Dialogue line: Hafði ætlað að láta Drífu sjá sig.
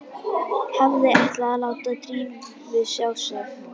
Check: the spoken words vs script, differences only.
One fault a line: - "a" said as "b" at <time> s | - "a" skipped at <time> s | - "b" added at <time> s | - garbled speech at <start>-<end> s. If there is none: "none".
none